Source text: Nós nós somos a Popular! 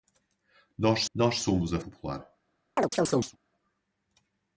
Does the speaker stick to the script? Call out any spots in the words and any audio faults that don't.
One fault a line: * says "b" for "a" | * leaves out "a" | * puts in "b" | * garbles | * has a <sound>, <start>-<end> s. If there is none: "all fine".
* has a chirp, 2.8-3.4 s